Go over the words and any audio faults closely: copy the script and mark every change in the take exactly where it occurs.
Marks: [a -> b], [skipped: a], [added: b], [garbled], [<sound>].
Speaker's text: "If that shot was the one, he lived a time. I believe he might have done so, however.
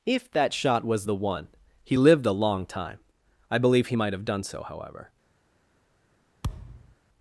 "If that shot was the one, he lived a [added: long] time. I believe he might have done so, however. [thud]